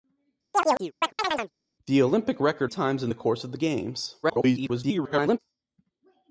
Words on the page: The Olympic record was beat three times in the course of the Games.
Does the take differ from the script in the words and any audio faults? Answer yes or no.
yes